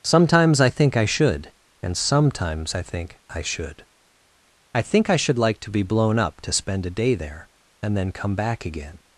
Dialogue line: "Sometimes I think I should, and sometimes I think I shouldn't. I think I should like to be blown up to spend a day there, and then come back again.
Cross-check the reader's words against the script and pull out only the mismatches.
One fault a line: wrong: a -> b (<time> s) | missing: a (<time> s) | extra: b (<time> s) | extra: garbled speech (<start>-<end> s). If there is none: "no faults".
wrong: shouldn't -> should (3.4 s)